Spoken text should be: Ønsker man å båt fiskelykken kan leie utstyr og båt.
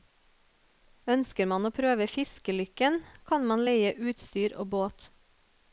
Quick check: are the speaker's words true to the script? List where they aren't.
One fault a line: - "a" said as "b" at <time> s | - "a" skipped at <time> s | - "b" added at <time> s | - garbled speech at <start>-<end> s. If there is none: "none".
- "båt" said as "prøve" at 1.8 s
- "man" added at 3.5 s